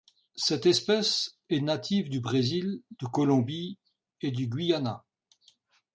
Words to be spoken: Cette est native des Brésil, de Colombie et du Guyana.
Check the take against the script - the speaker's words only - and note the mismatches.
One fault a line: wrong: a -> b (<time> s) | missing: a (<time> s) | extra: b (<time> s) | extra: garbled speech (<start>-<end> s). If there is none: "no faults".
extra: espèce (0.7 s)
wrong: des -> du (2.1 s)